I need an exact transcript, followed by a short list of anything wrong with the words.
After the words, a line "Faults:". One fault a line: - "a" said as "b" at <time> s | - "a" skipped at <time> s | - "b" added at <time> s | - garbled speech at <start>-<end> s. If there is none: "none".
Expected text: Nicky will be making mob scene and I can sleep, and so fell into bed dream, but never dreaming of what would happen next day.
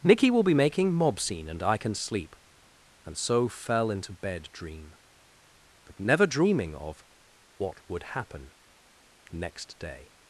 Nicky will be making mob scene and I can sleep, and so fell into bed dream, but never dreaming of what would happen next day.
Faults:
none